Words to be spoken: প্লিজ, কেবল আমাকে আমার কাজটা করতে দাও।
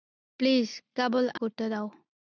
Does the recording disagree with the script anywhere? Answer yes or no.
yes